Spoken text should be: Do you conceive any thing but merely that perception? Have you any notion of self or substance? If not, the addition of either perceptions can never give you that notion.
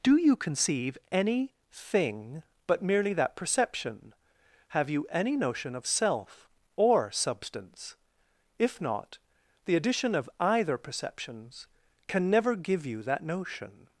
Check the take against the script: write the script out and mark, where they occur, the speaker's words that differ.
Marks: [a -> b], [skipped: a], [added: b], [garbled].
Do you conceive any thing but merely that perception? Have you any notion of self or substance? If not, the addition of either perceptions can never give you that notion.